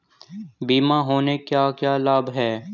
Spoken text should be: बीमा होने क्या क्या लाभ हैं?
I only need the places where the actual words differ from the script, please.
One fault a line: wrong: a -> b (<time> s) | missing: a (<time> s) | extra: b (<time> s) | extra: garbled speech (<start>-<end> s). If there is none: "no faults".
no faults